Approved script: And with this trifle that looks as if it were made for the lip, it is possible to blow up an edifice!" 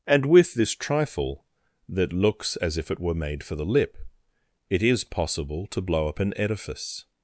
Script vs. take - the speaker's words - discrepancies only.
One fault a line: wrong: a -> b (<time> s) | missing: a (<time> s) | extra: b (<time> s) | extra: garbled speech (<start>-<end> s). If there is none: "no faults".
no faults